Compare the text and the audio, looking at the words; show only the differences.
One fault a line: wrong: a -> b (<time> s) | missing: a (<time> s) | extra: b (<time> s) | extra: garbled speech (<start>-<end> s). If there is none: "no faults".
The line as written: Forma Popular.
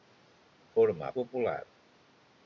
no faults